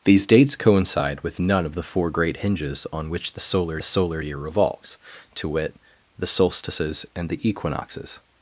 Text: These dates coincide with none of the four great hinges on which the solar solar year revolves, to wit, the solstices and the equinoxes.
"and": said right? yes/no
yes